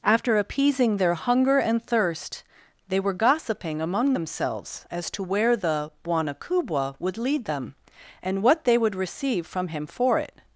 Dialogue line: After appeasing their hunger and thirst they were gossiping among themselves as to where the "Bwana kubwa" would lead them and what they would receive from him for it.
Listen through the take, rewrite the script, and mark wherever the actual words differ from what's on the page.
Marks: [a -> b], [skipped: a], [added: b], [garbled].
After appeasing their hunger and thirst they were gossiping among themselves as to where the "Bwana kubwa" would lead them and what they would receive from him for it.